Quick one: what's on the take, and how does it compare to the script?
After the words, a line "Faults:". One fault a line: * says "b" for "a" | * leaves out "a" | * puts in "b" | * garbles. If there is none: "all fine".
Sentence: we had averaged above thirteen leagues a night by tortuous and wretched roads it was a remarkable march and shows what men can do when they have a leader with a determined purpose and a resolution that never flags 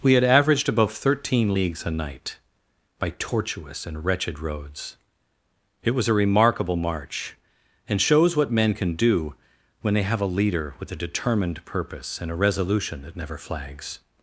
we had averaged above thirteen leagues a night by tortuous and wretched roads it was a remarkable march and shows what men can do when they have a leader with a determined purpose and a resolution that never flags
Faults:
all fine